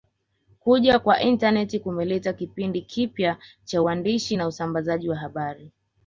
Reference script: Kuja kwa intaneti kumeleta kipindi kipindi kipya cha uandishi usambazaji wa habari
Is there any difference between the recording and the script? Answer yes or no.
yes